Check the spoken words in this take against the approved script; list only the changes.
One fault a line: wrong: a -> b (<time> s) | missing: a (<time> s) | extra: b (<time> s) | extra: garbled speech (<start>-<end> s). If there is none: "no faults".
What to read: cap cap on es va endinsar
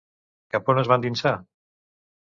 missing: cap (0.7 s)